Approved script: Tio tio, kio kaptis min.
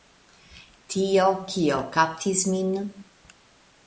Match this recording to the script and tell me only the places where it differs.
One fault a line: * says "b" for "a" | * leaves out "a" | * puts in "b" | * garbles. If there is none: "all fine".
* leaves out "tio"